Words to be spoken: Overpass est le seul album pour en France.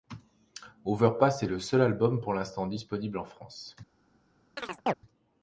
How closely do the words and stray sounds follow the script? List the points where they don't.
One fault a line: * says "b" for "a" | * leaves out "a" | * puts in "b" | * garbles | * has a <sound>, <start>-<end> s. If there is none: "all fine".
* puts in "l'instant disponible"
* has a chirp, 4.6-4.9 s